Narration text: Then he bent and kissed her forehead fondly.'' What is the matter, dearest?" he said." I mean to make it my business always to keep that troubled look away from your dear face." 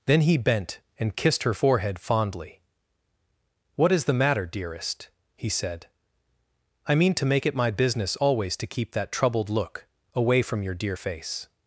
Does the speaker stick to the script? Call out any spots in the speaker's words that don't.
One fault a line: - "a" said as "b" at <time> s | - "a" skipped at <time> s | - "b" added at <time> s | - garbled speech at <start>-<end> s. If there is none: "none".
none